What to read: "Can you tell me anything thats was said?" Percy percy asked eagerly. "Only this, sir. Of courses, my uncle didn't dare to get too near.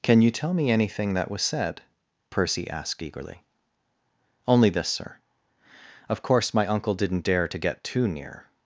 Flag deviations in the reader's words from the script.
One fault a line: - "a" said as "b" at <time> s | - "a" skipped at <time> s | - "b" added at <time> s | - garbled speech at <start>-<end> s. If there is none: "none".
- "thats" said as "that" at 1.1 s
- "percy" skipped at 2.7 s
- "courses" said as "course" at 6.2 s